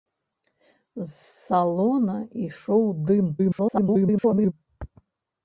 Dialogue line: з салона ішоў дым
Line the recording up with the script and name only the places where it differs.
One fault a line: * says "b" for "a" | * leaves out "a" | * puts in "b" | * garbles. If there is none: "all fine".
* garbles